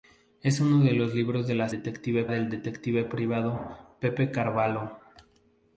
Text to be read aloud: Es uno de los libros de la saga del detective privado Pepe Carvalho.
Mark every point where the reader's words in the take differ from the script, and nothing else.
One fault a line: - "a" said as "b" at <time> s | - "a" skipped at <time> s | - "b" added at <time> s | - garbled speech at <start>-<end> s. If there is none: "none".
- "saga" said as "detective" at 1.7 s